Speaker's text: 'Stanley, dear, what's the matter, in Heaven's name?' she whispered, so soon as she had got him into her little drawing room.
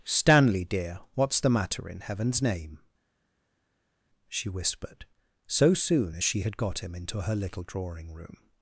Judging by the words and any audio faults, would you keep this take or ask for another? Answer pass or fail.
pass